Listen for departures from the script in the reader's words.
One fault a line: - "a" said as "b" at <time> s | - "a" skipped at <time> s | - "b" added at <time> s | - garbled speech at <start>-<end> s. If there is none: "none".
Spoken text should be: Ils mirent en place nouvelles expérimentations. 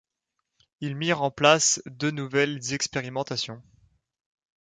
- "deux" added at 1.9 s